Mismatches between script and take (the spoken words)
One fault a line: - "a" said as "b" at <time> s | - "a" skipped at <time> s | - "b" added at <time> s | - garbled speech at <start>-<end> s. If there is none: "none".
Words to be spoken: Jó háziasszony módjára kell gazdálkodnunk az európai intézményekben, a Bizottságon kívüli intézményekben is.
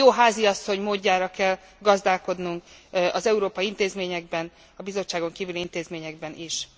none